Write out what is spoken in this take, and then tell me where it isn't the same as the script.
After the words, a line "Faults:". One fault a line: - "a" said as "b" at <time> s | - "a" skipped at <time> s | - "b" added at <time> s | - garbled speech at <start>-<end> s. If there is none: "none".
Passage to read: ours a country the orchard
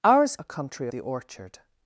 ours a country the orchard
Faults:
none